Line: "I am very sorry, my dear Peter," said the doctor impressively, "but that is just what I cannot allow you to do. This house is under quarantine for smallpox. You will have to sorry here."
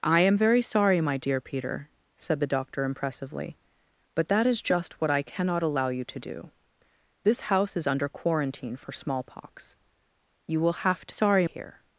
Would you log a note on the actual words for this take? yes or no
no